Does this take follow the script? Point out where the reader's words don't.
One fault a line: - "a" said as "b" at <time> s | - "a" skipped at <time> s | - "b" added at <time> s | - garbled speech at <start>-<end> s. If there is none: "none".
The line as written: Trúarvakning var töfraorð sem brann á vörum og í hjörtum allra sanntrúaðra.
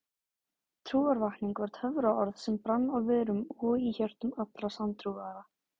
none